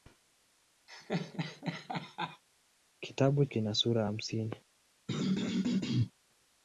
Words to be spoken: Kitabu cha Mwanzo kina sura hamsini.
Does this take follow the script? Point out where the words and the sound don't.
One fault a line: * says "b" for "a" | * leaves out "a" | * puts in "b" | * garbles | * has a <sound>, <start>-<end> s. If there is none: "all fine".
* has a laugh, 0.9-2.4 s
* leaves out "cha Mwanzo"
* has a throat clearing, 5.1-6.1 s